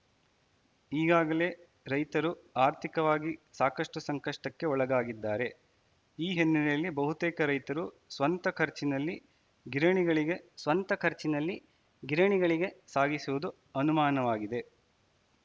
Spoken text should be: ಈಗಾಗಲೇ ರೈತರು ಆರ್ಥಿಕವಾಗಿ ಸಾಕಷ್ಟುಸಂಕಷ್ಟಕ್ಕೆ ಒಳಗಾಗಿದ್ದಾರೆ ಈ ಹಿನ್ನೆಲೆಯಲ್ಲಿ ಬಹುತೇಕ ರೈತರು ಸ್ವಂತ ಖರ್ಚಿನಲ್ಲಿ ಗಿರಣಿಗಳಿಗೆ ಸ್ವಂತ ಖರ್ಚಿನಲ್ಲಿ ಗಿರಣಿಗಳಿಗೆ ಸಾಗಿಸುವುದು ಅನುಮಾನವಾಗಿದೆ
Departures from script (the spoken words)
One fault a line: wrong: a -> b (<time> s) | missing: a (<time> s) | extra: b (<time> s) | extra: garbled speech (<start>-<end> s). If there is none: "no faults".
no faults